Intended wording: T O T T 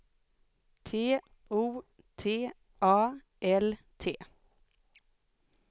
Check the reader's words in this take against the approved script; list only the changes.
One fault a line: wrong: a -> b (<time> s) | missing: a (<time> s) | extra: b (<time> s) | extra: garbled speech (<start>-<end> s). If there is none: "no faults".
extra: A L (2.8 s)